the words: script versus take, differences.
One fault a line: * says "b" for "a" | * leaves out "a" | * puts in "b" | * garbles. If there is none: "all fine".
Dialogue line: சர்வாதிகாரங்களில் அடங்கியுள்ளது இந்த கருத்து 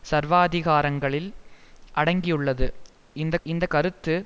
* puts in "இந்த"